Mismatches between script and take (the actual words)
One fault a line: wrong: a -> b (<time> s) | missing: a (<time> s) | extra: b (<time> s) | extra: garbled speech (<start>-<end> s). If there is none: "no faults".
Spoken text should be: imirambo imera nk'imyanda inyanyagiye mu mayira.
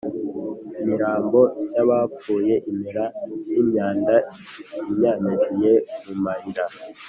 extra: y'abapfuye (1.8 s)